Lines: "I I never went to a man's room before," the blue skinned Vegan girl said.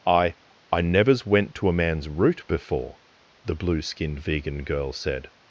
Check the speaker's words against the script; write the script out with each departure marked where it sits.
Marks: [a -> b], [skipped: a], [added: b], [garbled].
"I I [never -> nevers] went to a man's [room -> root] before," the blue skinned Vegan girl said.